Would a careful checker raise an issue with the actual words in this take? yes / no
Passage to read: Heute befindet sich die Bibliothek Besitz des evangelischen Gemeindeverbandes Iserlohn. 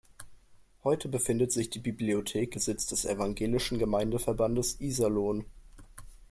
no